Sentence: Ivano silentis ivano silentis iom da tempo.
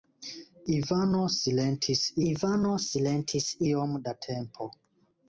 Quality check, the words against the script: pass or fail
pass